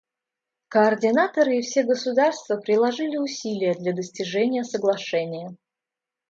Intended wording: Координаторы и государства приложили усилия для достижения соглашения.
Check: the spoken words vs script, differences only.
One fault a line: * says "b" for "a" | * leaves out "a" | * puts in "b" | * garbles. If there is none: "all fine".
* puts in "все"